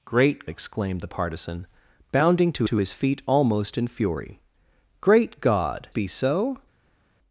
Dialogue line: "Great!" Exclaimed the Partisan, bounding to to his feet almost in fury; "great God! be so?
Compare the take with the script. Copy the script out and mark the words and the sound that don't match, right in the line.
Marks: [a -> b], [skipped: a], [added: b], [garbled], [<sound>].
"Great!" Exclaimed the Partisan, bounding to to his feet almost in fury; "great God! be so?